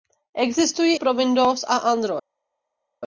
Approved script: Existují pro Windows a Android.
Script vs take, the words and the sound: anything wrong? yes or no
no